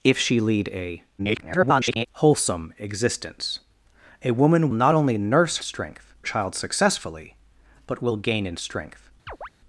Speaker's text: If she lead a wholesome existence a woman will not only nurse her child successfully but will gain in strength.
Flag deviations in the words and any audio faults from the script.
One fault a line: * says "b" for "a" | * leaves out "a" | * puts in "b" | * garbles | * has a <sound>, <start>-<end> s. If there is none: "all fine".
* garbles
* leaves out "will"
* says "strength" for "her"
* has a chirp, 9.3-9.5 s